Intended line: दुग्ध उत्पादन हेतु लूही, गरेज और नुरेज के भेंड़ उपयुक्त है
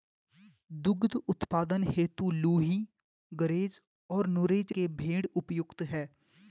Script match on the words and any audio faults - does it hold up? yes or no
yes